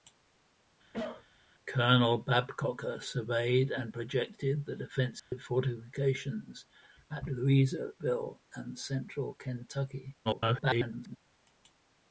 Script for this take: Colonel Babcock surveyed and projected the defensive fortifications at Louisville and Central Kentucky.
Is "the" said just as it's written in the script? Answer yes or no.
yes